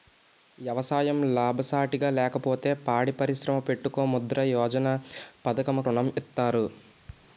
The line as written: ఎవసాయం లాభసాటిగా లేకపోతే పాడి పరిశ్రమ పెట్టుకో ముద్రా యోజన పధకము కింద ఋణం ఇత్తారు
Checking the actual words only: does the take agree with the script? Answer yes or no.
no